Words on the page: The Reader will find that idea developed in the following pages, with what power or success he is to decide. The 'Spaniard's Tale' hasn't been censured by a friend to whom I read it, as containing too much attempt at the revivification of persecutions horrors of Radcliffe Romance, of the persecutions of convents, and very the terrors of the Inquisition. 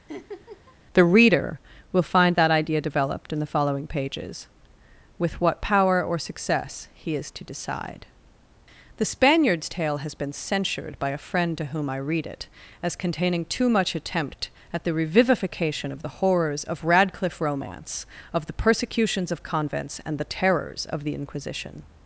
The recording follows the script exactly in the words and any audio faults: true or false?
false